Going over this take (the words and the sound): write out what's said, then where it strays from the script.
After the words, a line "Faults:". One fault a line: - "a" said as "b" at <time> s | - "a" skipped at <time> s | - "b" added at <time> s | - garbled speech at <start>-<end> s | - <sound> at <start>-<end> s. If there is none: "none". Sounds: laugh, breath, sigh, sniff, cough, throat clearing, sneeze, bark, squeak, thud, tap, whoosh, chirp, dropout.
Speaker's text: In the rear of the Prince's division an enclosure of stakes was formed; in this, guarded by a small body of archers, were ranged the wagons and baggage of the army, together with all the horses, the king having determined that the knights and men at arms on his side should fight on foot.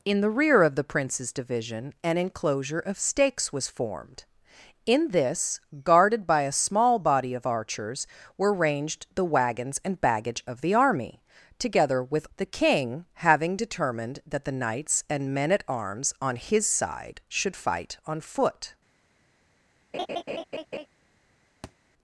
In the rear of the Prince's division an enclosure of stakes was formed; in this, guarded by a small body of archers, were ranged the wagons and baggage of the army, together with the king having determined that the knights and men at arms on his side should fight on foot.
Faults:
- "all the horses" skipped at 12.2 s
- laugh at 19.9-20.9 s
- thud at 21.6-21.7 s